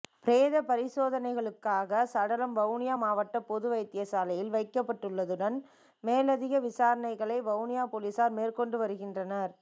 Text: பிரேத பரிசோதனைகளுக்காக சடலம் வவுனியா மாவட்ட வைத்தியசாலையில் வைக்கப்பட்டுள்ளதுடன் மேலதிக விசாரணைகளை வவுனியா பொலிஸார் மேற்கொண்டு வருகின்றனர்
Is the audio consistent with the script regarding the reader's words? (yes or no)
no